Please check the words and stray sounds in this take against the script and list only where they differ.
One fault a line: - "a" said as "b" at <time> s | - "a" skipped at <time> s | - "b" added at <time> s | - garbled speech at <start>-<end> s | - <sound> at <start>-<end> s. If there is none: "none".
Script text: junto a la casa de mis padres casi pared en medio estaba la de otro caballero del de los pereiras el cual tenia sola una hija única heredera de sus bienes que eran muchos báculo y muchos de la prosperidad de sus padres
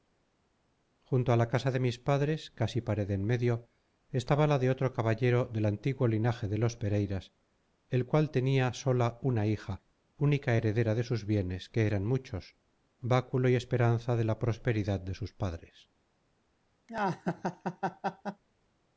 - "antiguo linaje" added at 5.7 s
- "muchos" said as "esperanza" at 13.5 s
- laugh at 16.9-18.4 s